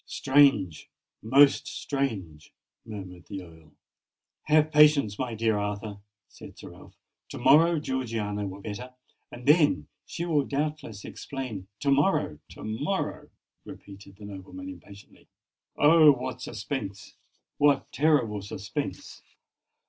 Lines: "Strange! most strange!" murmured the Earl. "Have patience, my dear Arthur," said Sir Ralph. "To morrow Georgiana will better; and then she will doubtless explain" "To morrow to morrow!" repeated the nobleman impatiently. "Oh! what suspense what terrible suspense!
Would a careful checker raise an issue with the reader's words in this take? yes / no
no